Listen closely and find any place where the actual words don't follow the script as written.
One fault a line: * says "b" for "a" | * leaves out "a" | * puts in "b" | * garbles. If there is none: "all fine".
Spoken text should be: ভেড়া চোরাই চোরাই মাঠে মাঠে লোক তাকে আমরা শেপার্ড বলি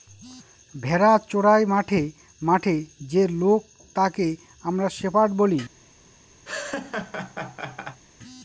* says "মাঠে" for "চোরাই"
* says "যে" for "মাঠে"